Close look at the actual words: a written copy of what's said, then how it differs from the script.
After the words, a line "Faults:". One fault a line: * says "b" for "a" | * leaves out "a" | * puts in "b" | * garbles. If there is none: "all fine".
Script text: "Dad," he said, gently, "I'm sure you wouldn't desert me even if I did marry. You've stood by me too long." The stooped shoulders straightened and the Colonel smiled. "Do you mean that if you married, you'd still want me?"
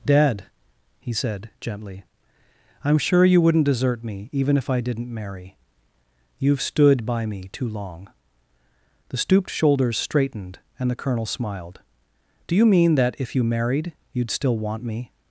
"Dad," he said, gently, "I'm sure you wouldn't desert me even if I didn't marry. You've stood by me too long." The stooped shoulders straightened and the Colonel smiled. "Do you mean that if you married, you'd still want me?"
Faults:
* says "didn't" for "did"